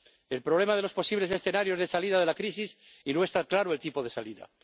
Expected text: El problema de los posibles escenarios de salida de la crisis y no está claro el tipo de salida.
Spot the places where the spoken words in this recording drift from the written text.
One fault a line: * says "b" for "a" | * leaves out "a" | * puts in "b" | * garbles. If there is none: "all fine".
all fine